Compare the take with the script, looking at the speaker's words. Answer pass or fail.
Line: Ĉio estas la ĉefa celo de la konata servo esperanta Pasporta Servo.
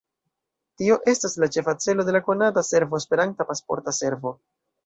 fail